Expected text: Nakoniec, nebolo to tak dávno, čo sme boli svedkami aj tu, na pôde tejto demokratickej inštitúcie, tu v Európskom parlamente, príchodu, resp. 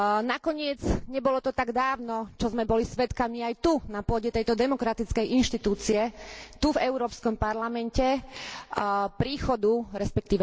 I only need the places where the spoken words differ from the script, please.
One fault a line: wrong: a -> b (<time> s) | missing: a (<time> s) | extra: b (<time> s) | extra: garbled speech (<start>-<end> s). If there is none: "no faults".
no faults